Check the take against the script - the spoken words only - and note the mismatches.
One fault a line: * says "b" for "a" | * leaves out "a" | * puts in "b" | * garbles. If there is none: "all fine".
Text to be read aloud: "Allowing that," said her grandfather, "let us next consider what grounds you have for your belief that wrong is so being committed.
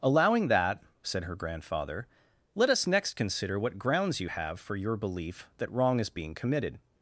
* leaves out "so"